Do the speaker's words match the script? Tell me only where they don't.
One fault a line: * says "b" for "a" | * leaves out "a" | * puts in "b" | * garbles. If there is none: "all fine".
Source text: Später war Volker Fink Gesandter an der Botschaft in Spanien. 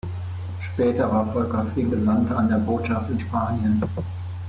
all fine